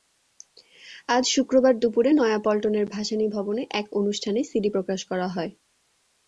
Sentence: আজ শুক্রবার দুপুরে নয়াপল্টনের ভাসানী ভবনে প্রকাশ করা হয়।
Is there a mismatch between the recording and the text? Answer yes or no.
yes